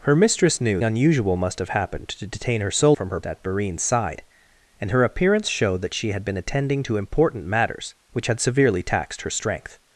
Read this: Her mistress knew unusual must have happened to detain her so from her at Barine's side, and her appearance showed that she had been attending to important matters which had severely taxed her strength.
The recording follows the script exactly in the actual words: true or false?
true